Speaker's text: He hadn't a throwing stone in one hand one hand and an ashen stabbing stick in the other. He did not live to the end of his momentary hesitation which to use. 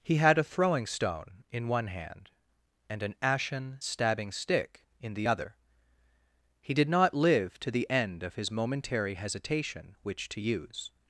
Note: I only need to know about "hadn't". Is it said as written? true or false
false